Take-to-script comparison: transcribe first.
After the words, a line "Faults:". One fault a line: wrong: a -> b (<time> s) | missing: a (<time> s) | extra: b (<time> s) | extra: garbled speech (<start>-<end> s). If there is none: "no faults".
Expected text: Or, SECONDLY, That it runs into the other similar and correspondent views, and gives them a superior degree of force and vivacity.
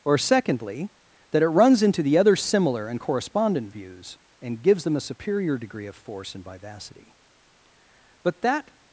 Or, SECONDLY, That it runs into the other similar and correspondent views, and gives them a superior degree of force and vivacity. But that
Faults:
extra: But that (8.2 s)